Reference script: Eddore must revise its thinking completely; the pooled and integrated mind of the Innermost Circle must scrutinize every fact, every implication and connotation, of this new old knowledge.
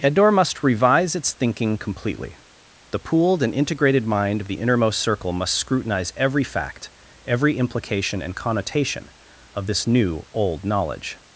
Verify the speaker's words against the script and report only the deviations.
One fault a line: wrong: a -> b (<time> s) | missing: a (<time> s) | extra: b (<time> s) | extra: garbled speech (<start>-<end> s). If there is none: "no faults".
no faults